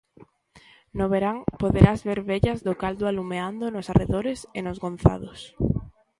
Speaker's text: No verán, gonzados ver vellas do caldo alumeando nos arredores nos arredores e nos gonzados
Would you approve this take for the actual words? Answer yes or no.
no